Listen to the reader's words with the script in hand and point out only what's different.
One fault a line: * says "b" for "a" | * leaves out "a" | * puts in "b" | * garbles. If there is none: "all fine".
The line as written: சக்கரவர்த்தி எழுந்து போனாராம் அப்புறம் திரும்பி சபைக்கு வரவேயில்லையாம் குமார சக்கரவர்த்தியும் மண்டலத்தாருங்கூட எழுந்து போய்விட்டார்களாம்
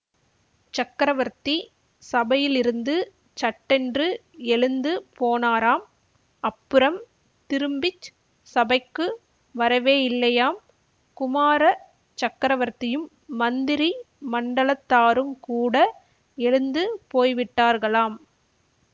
* puts in "சபையிலிருந்து சட்டென்று"
* puts in "மந்திரி"